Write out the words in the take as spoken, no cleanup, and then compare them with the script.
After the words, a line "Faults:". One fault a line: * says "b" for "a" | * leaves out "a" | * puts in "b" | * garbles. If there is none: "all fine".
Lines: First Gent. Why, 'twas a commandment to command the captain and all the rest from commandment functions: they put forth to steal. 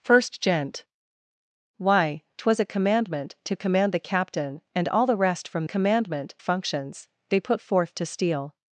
First Gent. Why, 'twas a commandment to command the captain and all the rest from commandment functions: they put forth to steal.
Faults:
all fine